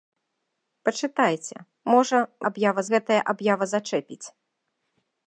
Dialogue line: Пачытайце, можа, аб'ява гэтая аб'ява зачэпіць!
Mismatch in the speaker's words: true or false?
false